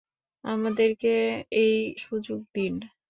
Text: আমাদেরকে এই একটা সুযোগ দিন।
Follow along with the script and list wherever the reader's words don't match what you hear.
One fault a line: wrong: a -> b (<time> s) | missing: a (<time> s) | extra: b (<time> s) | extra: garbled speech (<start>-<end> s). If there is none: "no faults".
missing: একটা (1.7 s)